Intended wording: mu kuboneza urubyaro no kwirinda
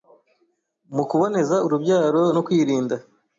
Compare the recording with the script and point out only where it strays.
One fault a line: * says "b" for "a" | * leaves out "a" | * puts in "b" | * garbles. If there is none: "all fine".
all fine